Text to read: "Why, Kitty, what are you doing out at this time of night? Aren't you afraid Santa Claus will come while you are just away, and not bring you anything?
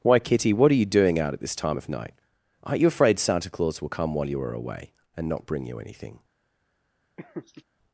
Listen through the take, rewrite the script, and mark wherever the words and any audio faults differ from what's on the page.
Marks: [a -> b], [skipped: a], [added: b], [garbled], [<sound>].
"Why, Kitty, what are you doing out at this time of night? Aren't you afraid Santa Claus will come while you are [skipped: just] away, and not bring you anything? [laugh]